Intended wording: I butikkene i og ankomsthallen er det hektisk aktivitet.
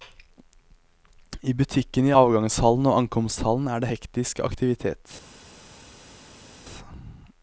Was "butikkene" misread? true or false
false